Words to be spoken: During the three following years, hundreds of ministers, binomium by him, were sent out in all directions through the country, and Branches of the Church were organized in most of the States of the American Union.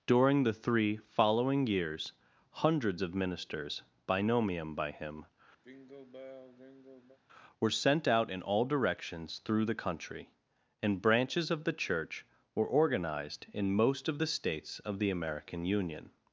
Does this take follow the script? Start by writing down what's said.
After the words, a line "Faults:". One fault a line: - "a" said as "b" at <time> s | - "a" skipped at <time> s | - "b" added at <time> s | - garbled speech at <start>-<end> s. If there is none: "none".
During the three following years, hundreds of ministers, binomium by him, were sent out in all directions through the country, and Branches of the Church were organized in most of the States of the American Union.
Faults:
none